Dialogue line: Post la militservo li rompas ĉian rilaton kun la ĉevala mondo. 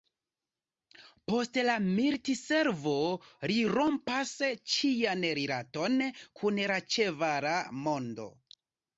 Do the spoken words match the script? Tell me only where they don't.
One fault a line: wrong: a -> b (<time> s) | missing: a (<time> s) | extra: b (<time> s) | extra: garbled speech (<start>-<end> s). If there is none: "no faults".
no faults